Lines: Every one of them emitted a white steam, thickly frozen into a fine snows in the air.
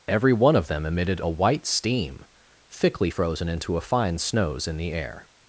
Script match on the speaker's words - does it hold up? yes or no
yes